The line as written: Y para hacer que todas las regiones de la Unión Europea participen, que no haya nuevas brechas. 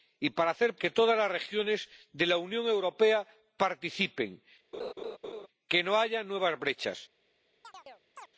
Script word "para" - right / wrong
right